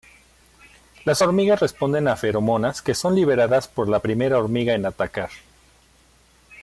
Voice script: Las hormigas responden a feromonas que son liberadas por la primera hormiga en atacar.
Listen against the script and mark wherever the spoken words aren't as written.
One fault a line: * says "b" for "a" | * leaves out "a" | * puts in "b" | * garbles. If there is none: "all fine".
all fine